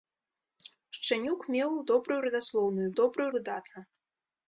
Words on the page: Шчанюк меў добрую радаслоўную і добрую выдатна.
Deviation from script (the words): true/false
false